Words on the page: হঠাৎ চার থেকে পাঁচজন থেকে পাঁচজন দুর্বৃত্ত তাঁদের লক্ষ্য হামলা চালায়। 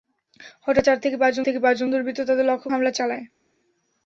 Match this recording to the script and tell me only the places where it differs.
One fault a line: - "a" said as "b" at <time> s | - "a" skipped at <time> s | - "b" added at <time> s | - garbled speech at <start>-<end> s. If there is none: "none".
none